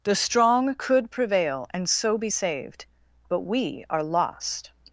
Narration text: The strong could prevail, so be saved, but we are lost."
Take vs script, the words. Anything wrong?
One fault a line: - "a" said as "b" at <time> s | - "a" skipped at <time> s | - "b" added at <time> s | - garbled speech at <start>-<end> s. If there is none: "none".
- "and" added at 1.7 s